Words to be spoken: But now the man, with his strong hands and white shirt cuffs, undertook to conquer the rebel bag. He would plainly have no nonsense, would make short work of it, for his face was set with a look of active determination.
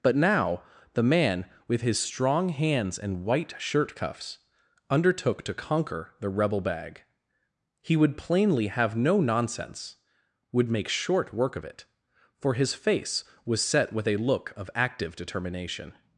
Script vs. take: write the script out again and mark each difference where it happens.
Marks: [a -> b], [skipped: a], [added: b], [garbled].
But now the man, with his strong hands and white shirt cuffs, undertook to conquer the rebel bag. He would plainly have no nonsense, would make short work of it, for his face was set with a look of active determination.